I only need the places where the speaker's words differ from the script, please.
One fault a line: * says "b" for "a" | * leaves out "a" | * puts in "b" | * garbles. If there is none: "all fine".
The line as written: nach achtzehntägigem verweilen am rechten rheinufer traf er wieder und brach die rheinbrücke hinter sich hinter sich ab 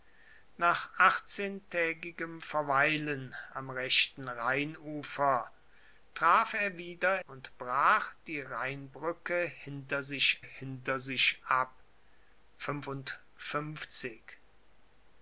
all fine